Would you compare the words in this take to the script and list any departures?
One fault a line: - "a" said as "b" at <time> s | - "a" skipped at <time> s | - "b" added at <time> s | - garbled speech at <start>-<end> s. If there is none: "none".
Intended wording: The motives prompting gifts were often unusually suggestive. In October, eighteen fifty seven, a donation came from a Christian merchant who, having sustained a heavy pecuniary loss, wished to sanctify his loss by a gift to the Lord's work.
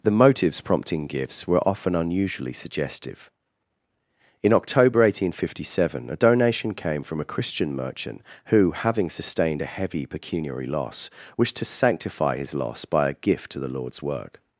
none